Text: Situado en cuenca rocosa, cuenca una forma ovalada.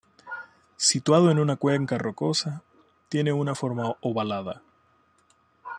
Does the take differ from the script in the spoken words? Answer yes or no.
yes